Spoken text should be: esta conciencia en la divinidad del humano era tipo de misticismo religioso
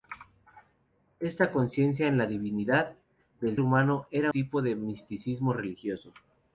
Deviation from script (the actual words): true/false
false